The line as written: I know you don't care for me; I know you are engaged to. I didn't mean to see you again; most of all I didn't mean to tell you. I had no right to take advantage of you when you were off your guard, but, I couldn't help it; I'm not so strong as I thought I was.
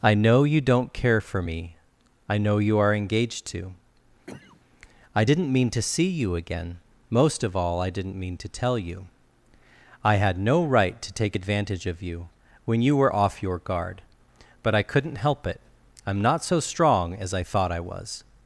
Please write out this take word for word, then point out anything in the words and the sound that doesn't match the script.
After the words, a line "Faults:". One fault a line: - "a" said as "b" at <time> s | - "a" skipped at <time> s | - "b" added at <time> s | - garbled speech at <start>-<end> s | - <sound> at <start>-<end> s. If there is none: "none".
I know you don't care for me; I know you are engaged to. I didn't mean to see you again; most of all I didn't mean to tell you. I had no right to take advantage of you when you were off your guard, but, I couldn't help it; I'm not so strong as I thought I was.
Faults:
- cough at 4.3-4.6 s